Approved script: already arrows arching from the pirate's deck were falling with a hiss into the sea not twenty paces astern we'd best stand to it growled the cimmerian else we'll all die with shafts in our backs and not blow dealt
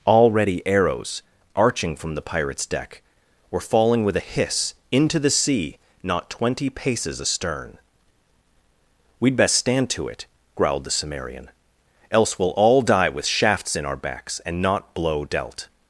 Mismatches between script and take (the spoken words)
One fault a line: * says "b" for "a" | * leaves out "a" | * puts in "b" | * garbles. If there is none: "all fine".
all fine